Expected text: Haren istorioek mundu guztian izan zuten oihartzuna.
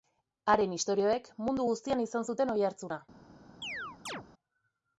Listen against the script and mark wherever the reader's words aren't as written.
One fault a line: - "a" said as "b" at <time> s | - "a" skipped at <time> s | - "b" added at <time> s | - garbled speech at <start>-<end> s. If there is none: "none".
none